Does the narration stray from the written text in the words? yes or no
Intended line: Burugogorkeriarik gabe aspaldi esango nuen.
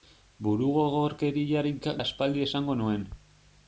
yes